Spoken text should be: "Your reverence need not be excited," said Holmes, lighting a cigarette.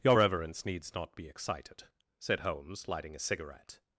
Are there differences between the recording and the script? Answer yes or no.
yes